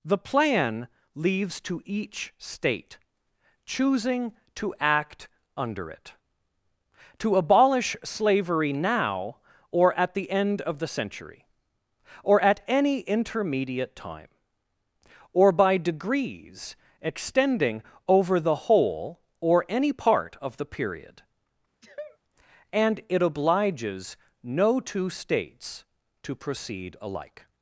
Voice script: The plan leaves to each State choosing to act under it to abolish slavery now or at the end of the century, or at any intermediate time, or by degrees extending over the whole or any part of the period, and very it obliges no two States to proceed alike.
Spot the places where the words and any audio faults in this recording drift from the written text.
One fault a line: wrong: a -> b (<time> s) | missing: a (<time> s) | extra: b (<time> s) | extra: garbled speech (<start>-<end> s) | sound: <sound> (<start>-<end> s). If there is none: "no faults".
sound: sneeze (21.8-22.2 s)
missing: very (23.0 s)